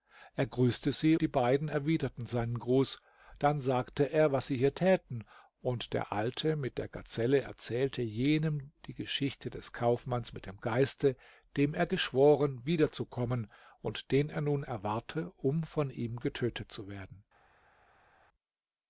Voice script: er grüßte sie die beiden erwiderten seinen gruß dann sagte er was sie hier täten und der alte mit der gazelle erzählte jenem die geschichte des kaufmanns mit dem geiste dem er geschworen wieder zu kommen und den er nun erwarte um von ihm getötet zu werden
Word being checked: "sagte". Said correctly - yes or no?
yes